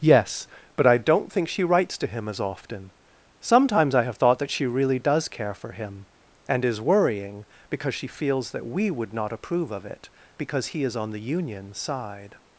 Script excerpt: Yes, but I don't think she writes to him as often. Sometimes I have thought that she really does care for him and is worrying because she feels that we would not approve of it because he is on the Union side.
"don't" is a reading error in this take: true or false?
false